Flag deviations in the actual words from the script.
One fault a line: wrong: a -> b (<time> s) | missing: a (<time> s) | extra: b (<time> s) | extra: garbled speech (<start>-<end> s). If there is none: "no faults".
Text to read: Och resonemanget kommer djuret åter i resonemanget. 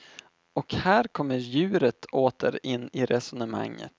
wrong: resonemanget -> här (0.7 s)
extra: in (2.6 s)